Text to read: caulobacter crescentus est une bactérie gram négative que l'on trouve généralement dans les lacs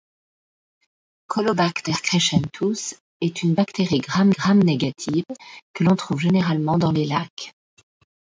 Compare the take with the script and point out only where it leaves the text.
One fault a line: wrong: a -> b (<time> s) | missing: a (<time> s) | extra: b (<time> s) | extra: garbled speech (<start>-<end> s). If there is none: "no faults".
extra: gram (4.3 s)